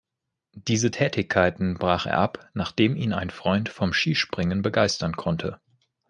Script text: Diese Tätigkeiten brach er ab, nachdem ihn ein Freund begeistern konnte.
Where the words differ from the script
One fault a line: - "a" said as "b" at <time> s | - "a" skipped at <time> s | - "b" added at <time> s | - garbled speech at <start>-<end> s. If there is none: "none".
- "vom Skispringen" added at 3.7 s